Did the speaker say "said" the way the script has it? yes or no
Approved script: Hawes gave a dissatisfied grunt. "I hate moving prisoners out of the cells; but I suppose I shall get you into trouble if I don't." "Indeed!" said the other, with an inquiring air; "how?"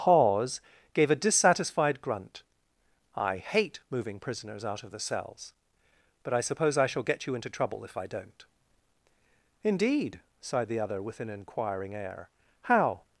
no